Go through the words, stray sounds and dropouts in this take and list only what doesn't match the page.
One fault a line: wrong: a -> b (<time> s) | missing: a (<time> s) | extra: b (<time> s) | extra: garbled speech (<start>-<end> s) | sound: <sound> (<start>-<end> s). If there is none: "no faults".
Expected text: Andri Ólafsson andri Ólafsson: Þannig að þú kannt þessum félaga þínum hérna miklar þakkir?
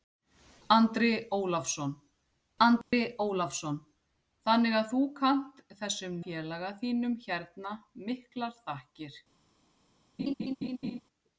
sound: dropout (2.8-2.9 s)
sound: laugh (10.2-11.0 s)